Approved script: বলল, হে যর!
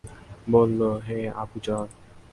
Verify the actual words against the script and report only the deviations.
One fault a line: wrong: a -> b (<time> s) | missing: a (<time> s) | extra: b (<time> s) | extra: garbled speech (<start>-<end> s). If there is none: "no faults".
extra: আবু (1.4 s)